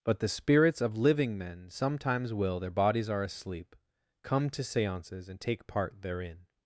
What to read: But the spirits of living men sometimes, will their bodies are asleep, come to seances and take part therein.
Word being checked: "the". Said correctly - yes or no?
yes